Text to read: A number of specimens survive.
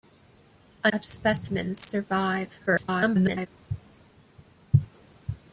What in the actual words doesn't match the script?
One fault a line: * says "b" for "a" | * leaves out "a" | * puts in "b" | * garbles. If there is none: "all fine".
* leaves out "number"
* garbles